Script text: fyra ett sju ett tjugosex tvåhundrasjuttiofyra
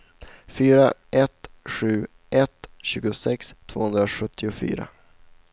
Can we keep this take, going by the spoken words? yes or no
yes